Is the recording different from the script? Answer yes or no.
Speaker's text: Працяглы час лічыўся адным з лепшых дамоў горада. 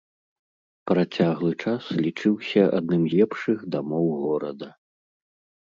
yes